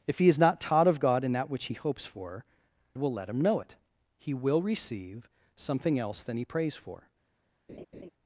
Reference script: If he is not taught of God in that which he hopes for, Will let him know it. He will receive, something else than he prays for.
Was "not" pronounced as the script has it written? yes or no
yes